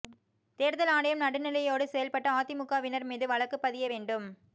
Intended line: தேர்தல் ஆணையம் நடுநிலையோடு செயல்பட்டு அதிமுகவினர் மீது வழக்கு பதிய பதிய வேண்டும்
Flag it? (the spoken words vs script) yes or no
yes